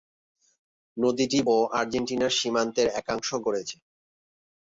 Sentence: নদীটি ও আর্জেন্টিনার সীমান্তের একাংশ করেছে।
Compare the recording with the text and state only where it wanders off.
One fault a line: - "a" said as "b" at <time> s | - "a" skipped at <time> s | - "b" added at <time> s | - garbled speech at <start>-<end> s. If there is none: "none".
none